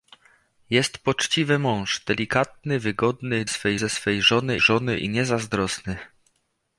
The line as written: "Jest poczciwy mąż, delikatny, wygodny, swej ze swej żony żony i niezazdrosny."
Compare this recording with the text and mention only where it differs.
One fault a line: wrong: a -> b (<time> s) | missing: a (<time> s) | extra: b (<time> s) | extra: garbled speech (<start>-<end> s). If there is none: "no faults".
no faults